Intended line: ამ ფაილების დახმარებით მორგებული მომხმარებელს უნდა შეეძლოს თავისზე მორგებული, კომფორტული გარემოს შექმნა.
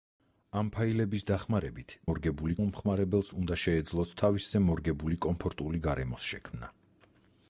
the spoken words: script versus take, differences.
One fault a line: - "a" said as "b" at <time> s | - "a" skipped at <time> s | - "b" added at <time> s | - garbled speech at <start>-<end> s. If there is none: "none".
none